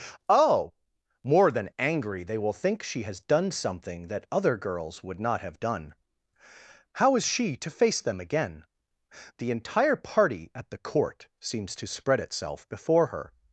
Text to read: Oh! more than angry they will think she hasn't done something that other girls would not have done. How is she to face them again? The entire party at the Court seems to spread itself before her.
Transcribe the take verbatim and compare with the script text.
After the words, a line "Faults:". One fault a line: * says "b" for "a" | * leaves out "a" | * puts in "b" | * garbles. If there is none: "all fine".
Oh! more than angry they will think she has done something that other girls would not have done. How is she to face them again? The entire party at the Court seems to spread itself before her.
Faults:
* says "has" for "hasn't"